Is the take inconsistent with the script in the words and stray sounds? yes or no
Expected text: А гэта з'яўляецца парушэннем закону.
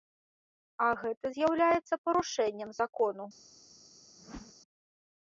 yes